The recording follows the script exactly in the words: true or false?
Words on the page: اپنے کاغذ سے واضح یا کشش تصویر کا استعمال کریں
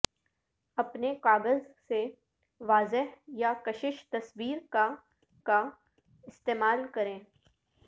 false